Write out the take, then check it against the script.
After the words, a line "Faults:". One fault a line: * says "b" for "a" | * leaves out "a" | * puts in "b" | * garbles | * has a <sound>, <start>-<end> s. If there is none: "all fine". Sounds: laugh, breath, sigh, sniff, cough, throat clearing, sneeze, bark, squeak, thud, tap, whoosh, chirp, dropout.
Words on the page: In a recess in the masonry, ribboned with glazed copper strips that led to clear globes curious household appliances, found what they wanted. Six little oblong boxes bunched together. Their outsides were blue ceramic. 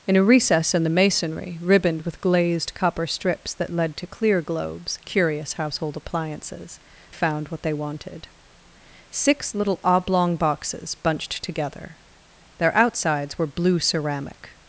In a recess in the masonry, ribboned with glazed copper strips that led to clear globes curious household appliances, found what they wanted. Six little oblong boxes bunched together. Their outsides were blue ceramic.
Faults:
all fine